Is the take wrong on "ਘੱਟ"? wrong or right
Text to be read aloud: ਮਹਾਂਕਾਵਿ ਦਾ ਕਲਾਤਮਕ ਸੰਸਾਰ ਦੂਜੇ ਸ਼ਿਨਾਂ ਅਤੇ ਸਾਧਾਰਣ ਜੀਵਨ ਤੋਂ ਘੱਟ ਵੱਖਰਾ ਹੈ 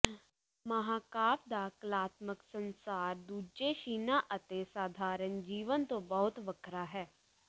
wrong